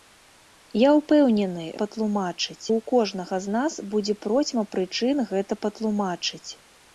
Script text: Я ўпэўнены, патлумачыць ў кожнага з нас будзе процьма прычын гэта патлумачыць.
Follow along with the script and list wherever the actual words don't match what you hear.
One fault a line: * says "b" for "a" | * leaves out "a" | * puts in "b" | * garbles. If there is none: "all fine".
all fine